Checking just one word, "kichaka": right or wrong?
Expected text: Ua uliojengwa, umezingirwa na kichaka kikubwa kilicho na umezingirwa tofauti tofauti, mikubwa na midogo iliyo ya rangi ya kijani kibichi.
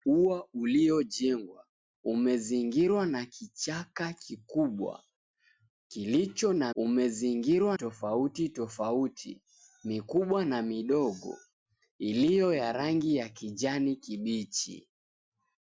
right